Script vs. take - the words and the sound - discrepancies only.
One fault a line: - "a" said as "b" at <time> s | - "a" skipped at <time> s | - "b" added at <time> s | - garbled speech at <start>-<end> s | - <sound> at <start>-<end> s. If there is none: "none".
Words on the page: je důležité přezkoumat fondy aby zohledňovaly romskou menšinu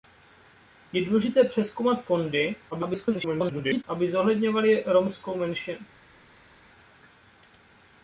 - garbled speech at 2.7-3.8 s